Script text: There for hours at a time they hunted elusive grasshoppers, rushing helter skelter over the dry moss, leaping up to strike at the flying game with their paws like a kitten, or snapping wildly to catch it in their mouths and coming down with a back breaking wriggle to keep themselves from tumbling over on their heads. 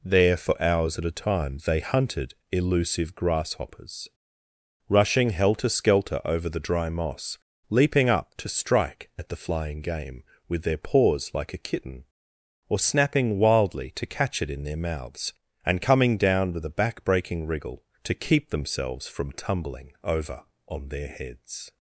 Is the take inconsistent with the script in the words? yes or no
no